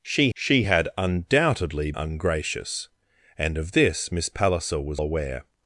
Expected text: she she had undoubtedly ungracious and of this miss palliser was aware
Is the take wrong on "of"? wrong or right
right